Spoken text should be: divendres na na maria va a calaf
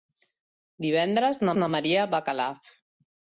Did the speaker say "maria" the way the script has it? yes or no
yes